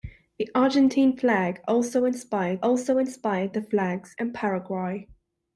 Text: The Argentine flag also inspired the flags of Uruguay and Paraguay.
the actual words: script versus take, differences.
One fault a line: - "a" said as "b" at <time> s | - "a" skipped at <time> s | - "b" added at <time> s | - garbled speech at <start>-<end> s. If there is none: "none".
- "also inspired" added at 2.6 s
- "of Uruguay" skipped at 4.2 s